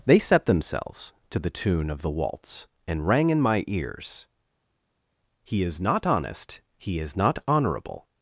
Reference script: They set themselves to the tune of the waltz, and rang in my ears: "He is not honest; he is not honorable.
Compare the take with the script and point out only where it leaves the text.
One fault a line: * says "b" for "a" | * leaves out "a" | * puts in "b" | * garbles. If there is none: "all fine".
all fine